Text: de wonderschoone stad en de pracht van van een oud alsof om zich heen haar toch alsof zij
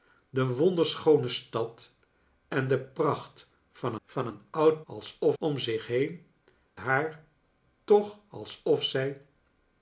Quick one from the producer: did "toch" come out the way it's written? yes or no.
yes